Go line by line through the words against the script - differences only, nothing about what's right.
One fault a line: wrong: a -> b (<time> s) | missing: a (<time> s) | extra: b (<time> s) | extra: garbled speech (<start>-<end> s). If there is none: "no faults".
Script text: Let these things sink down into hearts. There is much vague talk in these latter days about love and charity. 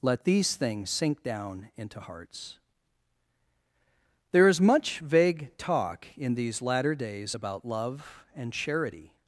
no faults